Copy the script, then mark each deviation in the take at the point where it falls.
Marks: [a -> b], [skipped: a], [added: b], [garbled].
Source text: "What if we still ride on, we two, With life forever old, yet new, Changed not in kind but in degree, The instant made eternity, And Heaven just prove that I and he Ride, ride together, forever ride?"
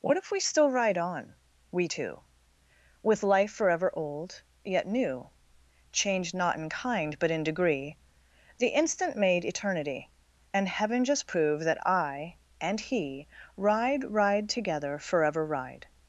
"What if we still ride on, we two, With life forever old, yet new, Changed not in kind but in degree, The instant made eternity, And Heaven just prove that I and he Ride, ride together, forever ride?"